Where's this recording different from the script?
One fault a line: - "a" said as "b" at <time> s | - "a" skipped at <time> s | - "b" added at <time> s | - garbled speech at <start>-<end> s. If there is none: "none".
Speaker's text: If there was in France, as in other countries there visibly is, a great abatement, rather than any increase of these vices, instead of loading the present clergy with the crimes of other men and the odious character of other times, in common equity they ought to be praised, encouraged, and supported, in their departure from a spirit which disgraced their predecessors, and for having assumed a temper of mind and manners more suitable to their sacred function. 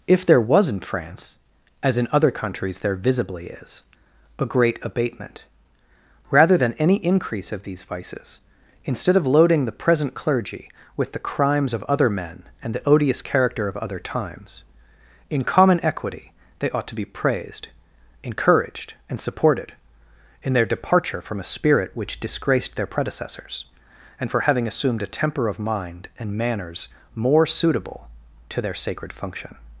none